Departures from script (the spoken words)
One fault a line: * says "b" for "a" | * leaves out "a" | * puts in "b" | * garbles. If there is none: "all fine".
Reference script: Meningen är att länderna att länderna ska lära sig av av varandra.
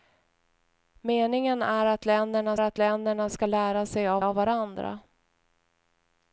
all fine